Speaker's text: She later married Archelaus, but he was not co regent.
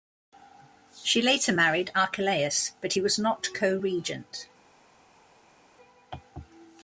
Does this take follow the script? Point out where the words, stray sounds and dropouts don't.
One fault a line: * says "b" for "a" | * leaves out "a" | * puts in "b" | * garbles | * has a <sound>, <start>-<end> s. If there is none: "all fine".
all fine